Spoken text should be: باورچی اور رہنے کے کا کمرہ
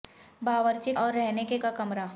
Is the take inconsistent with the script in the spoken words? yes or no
no